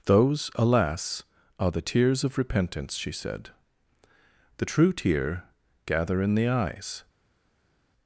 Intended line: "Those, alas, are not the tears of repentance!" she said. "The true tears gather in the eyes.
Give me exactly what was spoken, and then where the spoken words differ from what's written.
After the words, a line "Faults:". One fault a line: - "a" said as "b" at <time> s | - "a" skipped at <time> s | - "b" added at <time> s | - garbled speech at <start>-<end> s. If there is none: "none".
"Those, alas, are the tears of repentance!" she said. "The true tear gather in the eyes.
Faults:
- "not" skipped at 1.7 s
- "tears" said as "tear" at 4.9 s